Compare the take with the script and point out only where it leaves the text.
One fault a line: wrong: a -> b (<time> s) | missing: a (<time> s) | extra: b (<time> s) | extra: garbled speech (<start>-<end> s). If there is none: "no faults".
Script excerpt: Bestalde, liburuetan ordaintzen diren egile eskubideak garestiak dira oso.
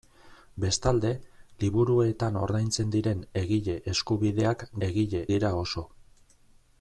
wrong: garestiak -> egile (4.9 s)